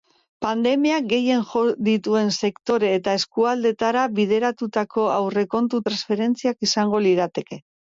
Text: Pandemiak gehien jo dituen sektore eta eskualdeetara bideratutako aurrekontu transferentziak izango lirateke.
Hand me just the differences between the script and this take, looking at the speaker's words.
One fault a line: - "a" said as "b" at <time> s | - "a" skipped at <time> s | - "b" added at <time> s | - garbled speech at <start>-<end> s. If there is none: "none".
none